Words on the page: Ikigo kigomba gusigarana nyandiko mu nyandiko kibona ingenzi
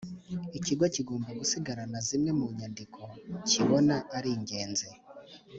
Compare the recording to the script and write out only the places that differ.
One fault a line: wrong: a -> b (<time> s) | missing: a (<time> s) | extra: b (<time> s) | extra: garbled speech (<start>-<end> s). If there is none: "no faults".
wrong: nyandiko -> zimwe (2.1 s)
extra: ari (4.2 s)